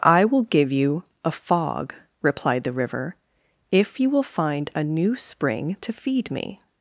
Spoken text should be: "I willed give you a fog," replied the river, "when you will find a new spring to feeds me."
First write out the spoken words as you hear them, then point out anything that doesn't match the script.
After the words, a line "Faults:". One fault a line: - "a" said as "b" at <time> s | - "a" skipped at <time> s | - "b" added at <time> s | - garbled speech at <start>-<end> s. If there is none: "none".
"I will give you a fog," replied the river, "if you will find a new spring to feed me."
Faults:
- "willed" said as "will" at 0.2 s
- "when" said as "if" at 3.7 s
- "feeds" said as "feed" at 5.9 s